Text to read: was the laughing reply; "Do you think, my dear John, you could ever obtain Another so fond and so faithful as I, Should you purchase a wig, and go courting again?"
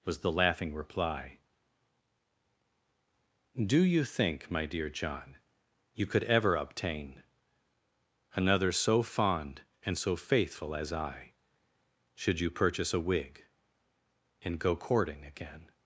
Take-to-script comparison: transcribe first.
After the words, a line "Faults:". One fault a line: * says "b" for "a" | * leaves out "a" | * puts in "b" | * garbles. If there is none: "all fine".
was the laughing reply; "Do you think, my dear John, you could ever obtain Another so fond and so faithful as I, Should you purchase a wig, and go courting again?"
Faults:
all fine